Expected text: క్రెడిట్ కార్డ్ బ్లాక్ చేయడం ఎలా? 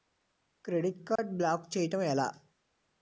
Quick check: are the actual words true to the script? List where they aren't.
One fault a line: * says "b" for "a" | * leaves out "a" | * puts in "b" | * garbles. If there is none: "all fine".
all fine